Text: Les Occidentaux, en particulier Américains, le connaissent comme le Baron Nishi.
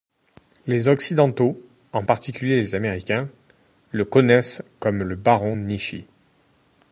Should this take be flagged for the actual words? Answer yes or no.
yes